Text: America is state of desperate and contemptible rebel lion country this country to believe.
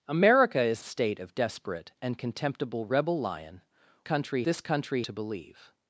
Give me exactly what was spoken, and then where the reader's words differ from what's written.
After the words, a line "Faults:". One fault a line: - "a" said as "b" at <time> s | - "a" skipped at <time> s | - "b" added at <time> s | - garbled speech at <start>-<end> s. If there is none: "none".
America is state of desperate and contemptible rebel lion country this country to believe.
Faults:
none